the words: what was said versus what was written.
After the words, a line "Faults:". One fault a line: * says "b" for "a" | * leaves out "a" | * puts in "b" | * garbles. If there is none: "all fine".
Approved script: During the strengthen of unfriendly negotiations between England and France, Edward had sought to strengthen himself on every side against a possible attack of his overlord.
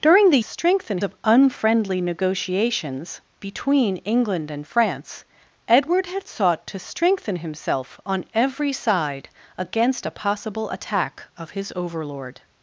During the strengthen of unfriendly negotiations between England and France, Edward had sought to strengthen himself on every side against a possible attack of his overlord.
Faults:
all fine